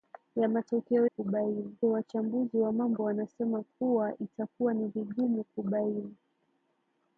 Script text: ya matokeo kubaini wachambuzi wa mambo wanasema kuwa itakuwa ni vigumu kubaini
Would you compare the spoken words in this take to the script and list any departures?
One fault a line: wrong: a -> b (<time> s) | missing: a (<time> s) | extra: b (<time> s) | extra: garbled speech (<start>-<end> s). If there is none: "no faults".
no faults